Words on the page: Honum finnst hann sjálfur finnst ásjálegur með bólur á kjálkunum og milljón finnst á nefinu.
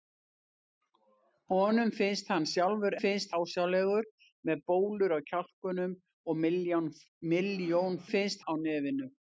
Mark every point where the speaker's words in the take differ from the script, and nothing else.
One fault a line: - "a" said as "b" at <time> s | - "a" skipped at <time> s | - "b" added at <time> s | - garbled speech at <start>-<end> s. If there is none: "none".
none